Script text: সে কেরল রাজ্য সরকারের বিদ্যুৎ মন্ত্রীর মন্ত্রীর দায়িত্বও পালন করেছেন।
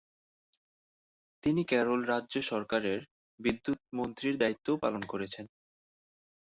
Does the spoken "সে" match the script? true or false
false